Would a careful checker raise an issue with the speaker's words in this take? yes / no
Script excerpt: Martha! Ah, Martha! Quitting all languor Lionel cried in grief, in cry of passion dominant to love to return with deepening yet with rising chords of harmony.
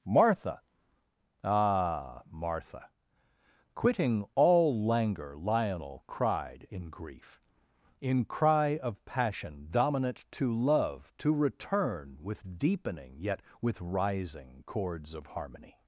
no